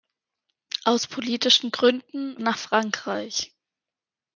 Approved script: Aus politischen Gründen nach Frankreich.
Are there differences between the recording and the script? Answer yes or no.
no